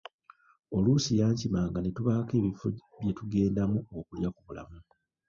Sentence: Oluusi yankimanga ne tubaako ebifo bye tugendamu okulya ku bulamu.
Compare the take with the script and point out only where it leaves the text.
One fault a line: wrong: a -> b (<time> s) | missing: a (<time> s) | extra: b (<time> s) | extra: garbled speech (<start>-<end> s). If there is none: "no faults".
no faults